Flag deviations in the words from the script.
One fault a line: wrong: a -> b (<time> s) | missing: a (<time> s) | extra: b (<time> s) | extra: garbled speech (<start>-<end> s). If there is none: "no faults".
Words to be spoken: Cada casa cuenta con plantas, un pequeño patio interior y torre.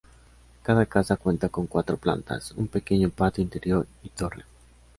extra: cuatro (1.7 s)